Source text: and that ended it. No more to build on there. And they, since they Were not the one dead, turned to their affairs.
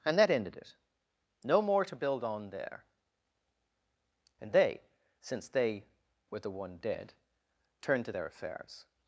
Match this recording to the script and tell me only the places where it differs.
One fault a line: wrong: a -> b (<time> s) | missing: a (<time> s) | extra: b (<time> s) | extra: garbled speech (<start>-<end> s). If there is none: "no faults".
missing: not (6.4 s)